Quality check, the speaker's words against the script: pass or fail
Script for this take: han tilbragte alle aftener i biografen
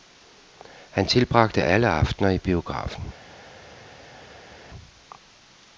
pass